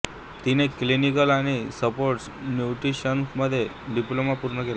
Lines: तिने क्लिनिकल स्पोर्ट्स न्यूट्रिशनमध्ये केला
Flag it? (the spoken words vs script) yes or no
yes